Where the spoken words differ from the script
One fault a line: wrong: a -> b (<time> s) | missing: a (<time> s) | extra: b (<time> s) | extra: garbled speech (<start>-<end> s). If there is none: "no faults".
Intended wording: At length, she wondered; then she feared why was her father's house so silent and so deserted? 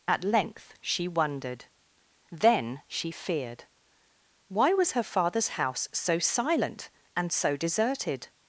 no faults